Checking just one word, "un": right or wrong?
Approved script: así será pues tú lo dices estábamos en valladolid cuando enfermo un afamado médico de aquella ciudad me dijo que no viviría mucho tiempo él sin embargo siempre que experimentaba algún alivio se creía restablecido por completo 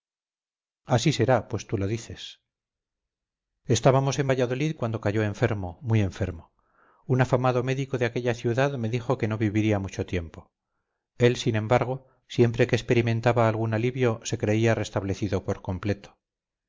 right